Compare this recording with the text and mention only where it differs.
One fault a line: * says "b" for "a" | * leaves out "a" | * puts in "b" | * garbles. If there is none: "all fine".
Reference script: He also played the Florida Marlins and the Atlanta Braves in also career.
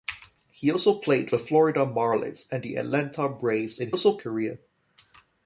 all fine